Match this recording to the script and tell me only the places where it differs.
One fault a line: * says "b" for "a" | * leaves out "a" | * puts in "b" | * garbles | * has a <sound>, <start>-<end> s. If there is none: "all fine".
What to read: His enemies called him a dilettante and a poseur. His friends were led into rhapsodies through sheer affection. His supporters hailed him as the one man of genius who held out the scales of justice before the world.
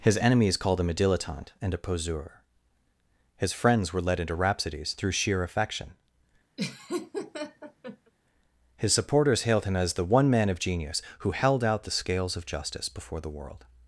* has a laugh, 6.6-8.1 s